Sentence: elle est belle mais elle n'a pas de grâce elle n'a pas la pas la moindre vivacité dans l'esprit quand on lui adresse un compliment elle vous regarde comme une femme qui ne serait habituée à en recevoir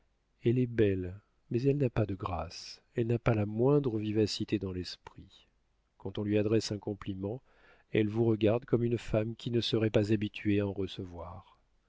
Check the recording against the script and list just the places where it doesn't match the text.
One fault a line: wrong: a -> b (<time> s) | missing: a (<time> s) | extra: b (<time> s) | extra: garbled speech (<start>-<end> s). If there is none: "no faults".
missing: pas la (3.5 s)
extra: pas (9.9 s)